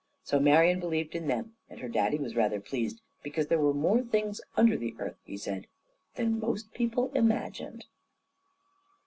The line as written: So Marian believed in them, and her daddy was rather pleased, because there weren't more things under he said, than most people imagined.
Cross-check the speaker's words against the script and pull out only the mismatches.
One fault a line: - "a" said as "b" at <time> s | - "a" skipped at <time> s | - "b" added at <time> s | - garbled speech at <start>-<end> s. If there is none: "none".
- "weren't" said as "were" at 3.6 s
- "the earth" added at 4.8 s